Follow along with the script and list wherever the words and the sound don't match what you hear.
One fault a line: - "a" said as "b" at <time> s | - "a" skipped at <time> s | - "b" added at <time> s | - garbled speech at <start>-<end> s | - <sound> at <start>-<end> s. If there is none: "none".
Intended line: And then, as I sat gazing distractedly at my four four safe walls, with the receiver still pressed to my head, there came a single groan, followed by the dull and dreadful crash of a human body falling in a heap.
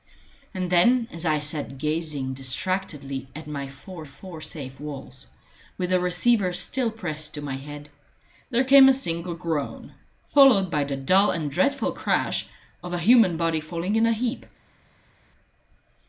none